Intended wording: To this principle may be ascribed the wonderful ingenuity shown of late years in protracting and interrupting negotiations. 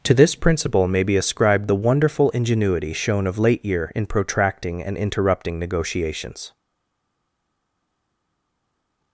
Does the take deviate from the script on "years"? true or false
true